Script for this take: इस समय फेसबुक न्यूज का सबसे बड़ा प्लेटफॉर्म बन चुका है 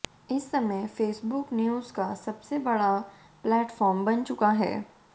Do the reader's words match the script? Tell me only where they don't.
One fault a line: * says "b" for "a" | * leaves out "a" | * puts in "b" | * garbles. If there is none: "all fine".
all fine